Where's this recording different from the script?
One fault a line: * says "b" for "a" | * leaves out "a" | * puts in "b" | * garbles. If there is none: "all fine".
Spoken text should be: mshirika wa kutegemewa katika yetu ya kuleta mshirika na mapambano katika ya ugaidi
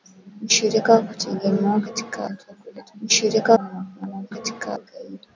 all fine